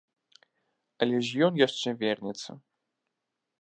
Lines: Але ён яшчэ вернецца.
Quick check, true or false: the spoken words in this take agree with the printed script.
false